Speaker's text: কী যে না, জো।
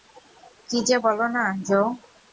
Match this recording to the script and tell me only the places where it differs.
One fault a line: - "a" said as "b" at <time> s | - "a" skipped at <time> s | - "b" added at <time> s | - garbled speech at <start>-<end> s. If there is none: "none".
- "বলো" added at 1.0 s